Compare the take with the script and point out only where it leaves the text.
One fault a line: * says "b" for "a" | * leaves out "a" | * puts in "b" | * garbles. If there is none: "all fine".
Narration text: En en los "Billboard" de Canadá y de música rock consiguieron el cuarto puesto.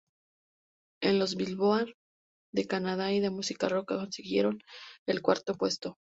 * leaves out "en"